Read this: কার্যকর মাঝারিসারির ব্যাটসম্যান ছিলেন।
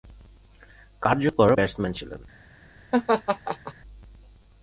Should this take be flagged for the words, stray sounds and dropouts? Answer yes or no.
yes